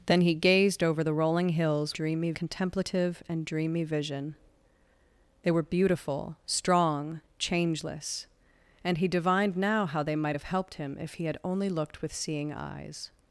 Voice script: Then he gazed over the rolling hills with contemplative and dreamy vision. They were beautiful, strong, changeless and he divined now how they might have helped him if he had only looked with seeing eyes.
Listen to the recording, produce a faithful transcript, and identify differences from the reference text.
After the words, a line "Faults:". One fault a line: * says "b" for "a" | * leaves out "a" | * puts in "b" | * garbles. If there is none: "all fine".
Then he gazed over the rolling hills dreamy contemplative and dreamy vision. They were beautiful, strong, changeless and he divined now how they might have helped him if he had only looked with seeing eyes.
Faults:
* says "dreamy" for "with"